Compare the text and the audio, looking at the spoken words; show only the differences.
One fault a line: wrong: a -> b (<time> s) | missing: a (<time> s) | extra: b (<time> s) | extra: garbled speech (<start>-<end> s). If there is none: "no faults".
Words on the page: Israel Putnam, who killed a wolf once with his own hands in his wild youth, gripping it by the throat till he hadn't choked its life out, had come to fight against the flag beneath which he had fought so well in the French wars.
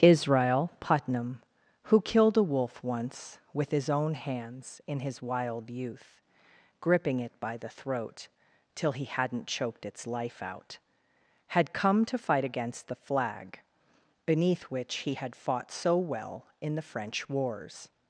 no faults